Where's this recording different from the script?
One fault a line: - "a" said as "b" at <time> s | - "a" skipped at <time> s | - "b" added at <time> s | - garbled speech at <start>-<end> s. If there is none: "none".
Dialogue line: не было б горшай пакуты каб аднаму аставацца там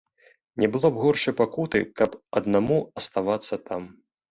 none